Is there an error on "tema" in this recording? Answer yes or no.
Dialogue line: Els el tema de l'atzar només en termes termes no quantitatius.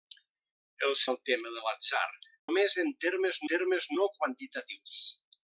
no